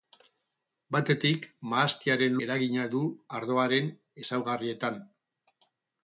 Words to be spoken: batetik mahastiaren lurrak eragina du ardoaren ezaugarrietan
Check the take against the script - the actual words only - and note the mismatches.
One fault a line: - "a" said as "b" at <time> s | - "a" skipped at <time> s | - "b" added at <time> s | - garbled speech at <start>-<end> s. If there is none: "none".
- "lurrak" skipped at 2.4 s